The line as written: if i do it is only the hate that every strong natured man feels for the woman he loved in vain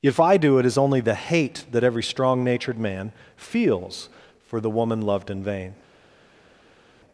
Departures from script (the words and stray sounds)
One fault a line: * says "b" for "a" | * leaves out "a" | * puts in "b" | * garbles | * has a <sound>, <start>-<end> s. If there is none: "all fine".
* leaves out "he"